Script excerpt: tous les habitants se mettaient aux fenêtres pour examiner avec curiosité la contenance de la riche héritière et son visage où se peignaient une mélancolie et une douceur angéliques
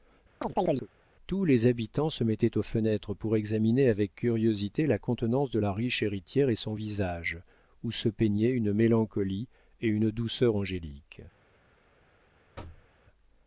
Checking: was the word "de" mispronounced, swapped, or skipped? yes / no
no